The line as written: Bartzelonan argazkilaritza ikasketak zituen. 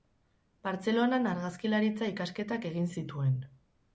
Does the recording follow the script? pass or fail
fail